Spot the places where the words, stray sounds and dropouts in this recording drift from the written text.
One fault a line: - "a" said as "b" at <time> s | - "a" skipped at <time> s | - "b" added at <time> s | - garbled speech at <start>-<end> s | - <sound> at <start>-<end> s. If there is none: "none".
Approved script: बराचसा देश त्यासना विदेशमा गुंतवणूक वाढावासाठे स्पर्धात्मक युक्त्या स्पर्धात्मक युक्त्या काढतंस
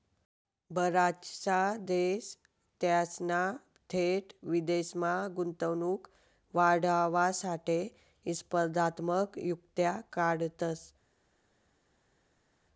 - "थेट" added at 3.9 s
- "स्पर्धात्मक युक्त्या" skipped at 10.0 s